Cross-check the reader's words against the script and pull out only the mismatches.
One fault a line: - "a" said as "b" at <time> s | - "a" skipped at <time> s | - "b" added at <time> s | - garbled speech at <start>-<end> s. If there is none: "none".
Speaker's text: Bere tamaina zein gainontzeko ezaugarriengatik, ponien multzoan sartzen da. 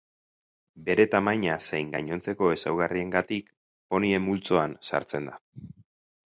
none